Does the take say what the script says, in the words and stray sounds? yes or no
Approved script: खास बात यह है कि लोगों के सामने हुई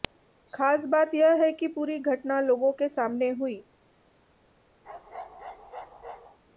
no